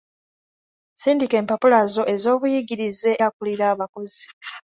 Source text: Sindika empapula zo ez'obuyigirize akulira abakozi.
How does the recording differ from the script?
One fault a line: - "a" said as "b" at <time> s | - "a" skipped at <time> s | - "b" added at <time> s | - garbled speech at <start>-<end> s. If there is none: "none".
none